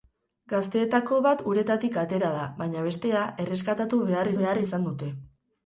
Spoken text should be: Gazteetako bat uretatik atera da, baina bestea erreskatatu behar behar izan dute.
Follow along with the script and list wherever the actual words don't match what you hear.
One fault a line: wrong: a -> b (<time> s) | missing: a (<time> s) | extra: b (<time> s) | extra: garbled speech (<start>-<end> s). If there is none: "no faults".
no faults